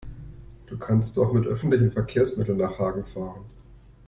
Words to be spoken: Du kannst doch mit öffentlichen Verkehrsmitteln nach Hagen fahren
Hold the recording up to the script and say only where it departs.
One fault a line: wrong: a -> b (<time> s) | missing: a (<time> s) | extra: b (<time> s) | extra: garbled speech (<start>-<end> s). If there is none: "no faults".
no faults